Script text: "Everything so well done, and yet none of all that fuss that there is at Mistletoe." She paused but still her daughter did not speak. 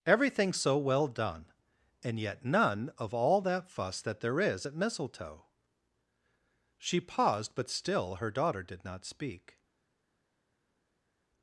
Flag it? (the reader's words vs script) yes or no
no